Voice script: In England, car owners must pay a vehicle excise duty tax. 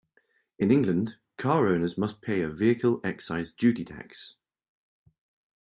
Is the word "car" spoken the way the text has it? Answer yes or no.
yes